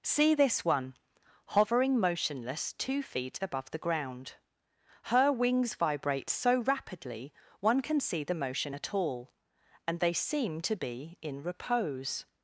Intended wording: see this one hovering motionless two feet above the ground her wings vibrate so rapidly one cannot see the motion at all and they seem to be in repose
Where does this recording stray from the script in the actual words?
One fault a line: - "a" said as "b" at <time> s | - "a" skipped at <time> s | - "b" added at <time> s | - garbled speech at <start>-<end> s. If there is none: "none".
- "cannot" said as "can" at 7.8 s